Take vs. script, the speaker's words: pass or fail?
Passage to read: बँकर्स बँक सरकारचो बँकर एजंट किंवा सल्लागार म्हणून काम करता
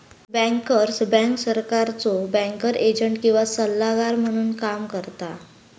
pass